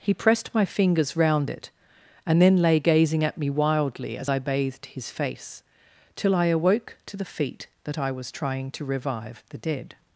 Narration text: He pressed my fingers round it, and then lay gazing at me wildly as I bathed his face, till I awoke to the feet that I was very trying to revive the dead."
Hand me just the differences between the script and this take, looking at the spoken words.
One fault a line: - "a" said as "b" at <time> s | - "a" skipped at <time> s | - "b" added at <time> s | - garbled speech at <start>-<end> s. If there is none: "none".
- "very" skipped at 8.3 s